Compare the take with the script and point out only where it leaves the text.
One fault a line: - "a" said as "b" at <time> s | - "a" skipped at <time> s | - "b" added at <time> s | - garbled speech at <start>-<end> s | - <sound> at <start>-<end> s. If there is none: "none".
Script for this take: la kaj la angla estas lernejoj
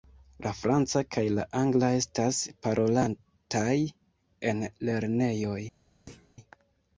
- "franca" added at 0.6 s
- "parolataj en" added at 2.7 s
- thud at 6.1-6.3 s